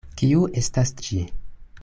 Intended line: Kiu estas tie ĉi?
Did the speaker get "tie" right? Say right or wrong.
wrong